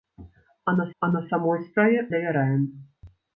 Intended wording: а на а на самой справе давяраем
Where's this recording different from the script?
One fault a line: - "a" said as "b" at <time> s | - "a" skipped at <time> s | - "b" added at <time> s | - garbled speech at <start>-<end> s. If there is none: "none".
none